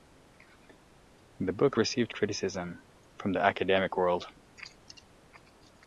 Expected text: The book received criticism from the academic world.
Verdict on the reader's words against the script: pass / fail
pass